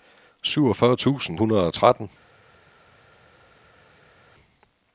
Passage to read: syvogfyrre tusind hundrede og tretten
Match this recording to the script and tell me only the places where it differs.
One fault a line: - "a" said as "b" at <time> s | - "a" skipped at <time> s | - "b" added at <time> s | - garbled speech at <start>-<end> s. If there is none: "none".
none